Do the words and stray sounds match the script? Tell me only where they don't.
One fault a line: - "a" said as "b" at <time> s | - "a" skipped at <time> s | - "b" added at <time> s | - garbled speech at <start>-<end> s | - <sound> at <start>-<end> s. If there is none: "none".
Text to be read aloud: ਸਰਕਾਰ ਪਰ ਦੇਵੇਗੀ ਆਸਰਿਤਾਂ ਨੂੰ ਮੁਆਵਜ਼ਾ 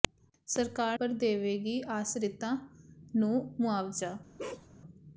- bark at 4.4-4.7 s